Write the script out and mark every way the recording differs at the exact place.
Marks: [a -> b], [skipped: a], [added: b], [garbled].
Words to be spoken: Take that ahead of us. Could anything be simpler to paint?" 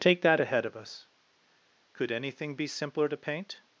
Take that ahead of us. Could anything be simpler to paint?"